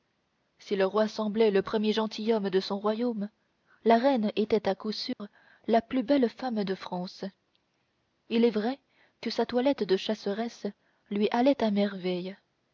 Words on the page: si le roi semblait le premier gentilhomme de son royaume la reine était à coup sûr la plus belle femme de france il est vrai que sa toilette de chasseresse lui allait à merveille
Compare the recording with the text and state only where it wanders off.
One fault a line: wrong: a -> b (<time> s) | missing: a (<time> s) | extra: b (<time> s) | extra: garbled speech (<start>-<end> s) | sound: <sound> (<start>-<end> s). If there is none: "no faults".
sound: dropout (5.1-5.2 s)